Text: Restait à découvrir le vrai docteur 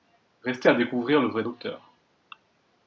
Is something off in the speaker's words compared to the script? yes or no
no